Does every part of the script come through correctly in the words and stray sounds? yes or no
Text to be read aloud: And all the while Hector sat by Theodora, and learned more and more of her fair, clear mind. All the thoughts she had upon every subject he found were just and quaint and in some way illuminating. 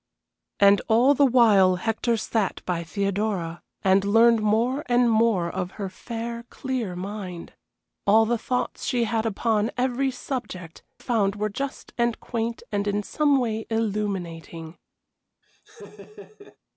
no